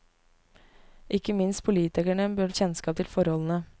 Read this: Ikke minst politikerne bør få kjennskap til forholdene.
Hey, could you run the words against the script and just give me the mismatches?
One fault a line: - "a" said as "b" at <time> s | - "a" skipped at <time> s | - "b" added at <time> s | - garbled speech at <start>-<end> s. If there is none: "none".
- "få" skipped at 2.5 s